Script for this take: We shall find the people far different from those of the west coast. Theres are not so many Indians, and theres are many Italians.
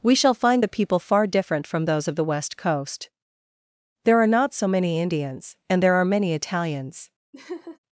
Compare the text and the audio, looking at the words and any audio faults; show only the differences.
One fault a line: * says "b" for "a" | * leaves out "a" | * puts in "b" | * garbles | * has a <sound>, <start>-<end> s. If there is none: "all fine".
* says "There" for "Theres"
* says "there" for "theres"
* has a laugh, 7.3-7.8 s